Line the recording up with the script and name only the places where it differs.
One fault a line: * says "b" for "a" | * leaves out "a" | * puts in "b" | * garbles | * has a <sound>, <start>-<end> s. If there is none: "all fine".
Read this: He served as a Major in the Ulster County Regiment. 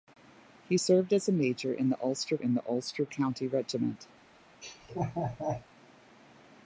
* puts in "in the Ulster"
* has a laugh, 4.6-5.7 s